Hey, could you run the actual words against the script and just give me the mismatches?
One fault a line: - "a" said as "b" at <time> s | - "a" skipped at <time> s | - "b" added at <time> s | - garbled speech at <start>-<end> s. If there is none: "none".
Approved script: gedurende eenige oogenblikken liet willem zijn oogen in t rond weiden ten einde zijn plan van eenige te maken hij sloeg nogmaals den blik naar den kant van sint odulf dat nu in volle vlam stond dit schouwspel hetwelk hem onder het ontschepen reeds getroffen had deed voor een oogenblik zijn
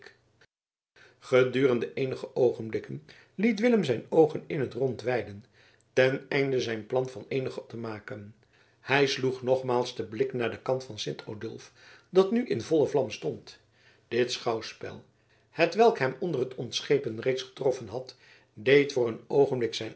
none